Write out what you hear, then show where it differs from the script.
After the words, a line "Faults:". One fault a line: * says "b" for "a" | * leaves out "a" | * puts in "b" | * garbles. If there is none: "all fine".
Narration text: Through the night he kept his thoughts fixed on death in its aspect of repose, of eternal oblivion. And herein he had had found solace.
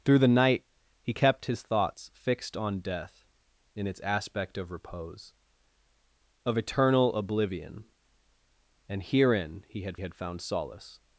Through the night he kept his thoughts fixed on death in its aspect of repose, of eternal oblivion. And herein he had had found solace.
Faults:
all fine